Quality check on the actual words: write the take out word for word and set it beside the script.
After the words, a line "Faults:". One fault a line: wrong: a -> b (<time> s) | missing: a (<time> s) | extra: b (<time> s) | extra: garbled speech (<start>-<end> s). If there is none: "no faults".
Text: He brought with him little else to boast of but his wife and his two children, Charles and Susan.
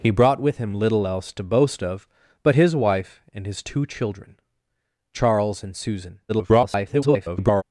He brought with him little else to boast of but his wife and his two children, Charles and Susan. [garbled]
Faults:
extra: garbled speech (6.3-7.6 s)